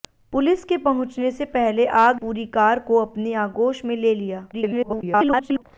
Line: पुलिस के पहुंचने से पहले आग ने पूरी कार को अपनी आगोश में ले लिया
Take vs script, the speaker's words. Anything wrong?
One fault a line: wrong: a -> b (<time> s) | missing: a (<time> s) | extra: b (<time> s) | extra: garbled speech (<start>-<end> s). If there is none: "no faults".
missing: ने (2.2 s)
extra: garbled speech (4.5-5.6 s)